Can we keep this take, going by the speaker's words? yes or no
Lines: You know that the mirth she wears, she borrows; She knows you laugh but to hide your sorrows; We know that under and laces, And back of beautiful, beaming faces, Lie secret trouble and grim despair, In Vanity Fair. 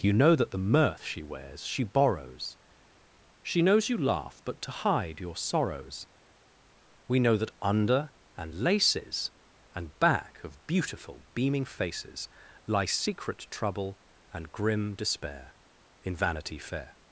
yes